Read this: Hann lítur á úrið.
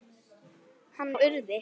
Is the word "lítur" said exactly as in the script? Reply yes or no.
no